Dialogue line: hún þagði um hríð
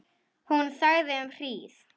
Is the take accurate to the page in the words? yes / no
yes